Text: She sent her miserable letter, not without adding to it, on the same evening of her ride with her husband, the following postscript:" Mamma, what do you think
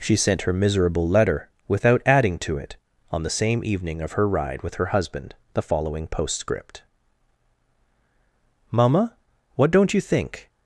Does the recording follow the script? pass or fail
fail